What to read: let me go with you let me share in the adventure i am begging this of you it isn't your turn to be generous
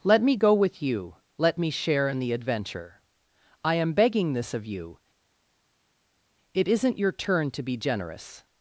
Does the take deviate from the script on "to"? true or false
false